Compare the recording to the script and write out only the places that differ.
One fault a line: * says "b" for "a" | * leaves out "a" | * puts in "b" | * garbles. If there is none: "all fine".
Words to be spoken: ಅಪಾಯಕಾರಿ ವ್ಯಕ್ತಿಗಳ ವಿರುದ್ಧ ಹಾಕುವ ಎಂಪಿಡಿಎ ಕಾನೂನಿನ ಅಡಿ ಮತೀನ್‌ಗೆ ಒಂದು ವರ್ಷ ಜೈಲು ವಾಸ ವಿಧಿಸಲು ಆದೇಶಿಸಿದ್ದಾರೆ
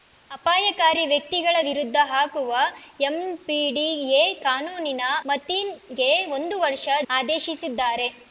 * leaves out "ಅಡಿ"
* leaves out "ಜೈಲು ವಾಸ ವಿಧಿಸಲು"